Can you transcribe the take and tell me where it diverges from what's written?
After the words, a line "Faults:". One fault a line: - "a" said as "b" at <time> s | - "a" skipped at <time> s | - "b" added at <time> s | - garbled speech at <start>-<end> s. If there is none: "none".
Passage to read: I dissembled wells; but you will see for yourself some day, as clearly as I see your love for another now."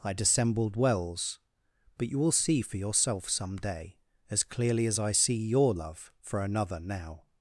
I dissembled wells; but you will see for yourself some day, as clearly as I see your love for another now."
Faults:
none